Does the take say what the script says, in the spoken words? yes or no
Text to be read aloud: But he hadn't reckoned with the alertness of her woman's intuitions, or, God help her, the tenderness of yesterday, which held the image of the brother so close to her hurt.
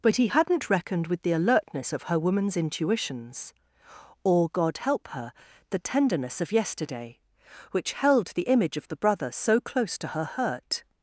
yes